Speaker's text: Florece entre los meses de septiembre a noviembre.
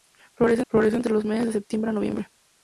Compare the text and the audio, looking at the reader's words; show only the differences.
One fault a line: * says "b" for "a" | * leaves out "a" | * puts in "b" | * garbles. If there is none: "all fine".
* puts in "florece"